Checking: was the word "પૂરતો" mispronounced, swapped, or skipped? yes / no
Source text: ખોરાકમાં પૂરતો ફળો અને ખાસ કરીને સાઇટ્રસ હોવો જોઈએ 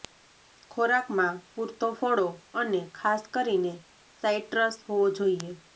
no